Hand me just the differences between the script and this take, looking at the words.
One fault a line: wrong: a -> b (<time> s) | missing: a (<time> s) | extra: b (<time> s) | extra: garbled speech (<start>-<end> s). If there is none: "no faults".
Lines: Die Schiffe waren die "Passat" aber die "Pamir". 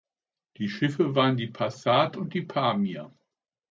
wrong: aber -> und (2.2 s)